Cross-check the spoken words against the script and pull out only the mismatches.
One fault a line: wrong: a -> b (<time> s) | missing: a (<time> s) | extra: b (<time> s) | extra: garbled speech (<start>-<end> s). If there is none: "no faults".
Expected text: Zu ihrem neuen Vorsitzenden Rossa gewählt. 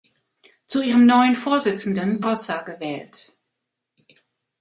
no faults